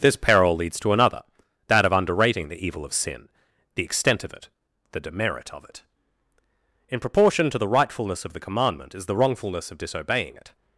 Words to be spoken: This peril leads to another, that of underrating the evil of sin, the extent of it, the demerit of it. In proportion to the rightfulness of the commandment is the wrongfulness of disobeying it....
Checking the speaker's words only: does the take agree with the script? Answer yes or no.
yes